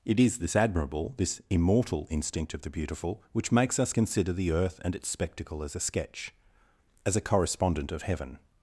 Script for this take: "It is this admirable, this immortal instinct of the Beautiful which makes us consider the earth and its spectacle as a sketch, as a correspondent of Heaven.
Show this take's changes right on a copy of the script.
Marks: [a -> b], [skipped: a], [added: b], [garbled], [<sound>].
"It is this admirable, this immortal instinct of the Beautiful which makes us consider the earth and its spectacle as a sketch, as a correspondent of Heaven.